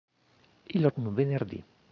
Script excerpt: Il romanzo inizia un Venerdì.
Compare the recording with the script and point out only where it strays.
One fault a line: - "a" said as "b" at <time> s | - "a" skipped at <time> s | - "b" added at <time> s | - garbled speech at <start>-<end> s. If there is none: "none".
- "romanzo inizia" skipped at 0.9 s